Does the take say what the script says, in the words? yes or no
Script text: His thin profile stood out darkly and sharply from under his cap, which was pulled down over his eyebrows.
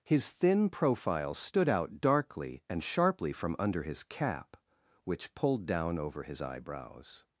no